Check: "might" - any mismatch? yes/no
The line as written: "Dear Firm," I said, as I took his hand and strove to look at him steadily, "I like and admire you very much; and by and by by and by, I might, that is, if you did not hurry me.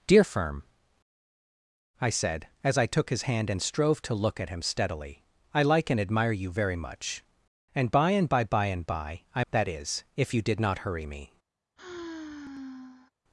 yes